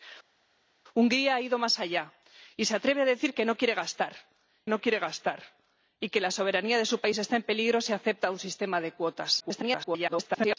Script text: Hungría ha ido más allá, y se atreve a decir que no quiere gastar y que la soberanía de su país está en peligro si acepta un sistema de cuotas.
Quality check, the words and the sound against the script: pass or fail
fail